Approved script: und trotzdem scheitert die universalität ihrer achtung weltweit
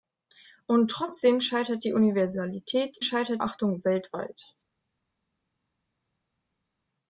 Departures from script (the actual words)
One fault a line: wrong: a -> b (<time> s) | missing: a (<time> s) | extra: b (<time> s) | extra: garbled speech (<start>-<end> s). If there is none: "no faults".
wrong: ihrer -> scheitert (3.0 s)